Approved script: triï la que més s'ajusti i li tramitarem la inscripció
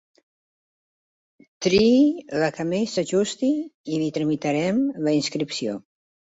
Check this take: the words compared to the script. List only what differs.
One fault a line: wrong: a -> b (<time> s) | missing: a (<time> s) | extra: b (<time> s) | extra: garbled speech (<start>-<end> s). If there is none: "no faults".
no faults